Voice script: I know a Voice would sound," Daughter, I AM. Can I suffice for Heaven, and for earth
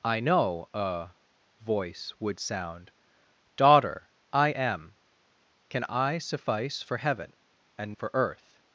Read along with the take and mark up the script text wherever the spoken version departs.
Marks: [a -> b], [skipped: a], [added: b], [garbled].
I know a Voice would sound," Daughter, I AM. Can I suffice for Heaven, and for earth